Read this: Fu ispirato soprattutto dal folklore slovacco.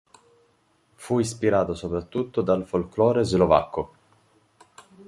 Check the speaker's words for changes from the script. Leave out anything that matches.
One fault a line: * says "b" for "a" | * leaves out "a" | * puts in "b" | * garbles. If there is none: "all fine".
all fine